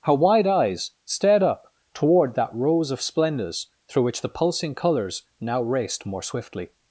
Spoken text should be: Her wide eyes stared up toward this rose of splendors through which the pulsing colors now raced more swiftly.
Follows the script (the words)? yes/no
no